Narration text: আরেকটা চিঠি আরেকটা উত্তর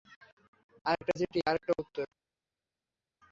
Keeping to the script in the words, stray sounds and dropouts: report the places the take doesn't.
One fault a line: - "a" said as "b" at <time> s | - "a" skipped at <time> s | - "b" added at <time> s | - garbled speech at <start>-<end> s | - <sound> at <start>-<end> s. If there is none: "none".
none